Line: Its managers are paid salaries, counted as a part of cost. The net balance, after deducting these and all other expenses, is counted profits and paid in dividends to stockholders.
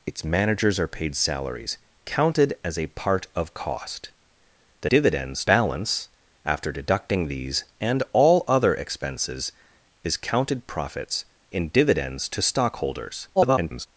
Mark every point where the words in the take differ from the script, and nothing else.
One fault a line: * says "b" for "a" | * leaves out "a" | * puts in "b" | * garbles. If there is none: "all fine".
* says "dividends" for "net"
* leaves out "and paid"
* garbles